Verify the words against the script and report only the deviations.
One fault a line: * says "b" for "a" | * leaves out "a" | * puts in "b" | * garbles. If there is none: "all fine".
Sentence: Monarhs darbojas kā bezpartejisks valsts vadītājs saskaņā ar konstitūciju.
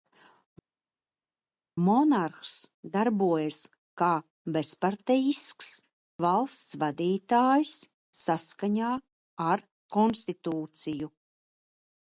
all fine